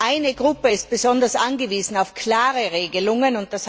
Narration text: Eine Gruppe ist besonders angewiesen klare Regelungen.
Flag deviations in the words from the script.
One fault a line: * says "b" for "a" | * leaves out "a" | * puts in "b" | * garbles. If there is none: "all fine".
* puts in "auf"